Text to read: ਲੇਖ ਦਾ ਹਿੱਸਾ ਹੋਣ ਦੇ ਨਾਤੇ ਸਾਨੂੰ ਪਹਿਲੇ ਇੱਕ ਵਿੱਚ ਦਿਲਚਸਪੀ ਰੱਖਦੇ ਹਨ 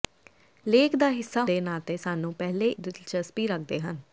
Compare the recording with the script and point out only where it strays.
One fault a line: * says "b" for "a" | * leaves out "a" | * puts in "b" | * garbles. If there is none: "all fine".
* leaves out "ਹੋਣ"
* leaves out "ਇੱਕ ਵਿੱਚ"